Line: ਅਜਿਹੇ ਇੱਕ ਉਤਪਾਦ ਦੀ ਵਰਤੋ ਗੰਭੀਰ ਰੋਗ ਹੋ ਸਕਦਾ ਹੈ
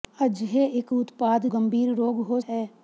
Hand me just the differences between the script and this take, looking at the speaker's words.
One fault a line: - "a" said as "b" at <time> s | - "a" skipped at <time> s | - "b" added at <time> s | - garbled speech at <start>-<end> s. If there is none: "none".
- "ਦੀ ਵਰਤੋ" skipped at 1.5 s
- "ਸਕਦਾ" skipped at 2.4 s